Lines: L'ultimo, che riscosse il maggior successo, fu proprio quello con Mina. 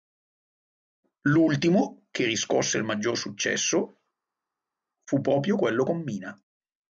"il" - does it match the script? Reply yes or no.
yes